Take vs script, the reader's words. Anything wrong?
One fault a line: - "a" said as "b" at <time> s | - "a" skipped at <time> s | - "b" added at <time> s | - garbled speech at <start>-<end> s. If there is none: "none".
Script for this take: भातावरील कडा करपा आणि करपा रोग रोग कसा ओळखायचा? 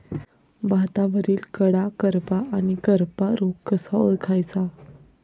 - "रोग" skipped at 3.5 s